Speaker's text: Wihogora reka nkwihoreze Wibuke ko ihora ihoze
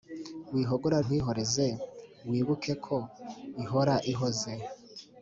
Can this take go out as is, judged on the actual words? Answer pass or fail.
fail